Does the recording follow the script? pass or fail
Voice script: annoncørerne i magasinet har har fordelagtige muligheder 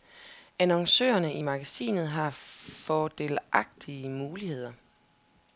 fail